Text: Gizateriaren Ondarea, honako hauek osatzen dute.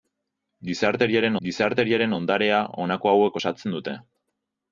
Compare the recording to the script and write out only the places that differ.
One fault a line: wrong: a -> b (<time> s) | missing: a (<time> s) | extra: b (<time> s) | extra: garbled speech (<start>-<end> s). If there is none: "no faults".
extra: gizateriaren (1.5 s)